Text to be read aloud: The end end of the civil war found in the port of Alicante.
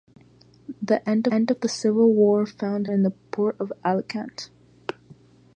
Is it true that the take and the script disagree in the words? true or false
false